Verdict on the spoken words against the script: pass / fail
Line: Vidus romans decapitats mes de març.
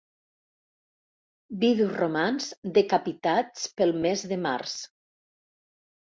fail